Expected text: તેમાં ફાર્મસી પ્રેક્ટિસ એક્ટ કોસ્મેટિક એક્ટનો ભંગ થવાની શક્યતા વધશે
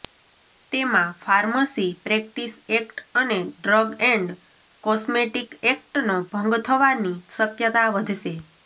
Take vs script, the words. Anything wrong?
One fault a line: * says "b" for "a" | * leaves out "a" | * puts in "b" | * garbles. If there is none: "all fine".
* puts in "અને ડ્રગ એન્ડ"